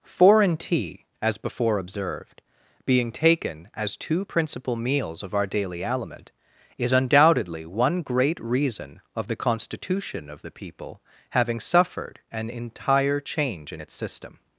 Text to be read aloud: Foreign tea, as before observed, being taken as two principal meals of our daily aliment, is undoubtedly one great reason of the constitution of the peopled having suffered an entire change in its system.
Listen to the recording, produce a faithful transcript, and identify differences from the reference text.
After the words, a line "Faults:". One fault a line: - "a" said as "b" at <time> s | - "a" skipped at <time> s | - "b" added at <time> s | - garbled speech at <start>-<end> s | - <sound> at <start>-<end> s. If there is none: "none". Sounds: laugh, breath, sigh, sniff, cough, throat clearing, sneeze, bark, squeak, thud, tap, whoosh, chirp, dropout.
Foreign tea, as before observed, being taken as two principal meals of our daily aliment, is undoubtedly one great reason of the constitution of the people having suffered an entire change in its system.
Faults:
- "peopled" said as "people" at 10.5 s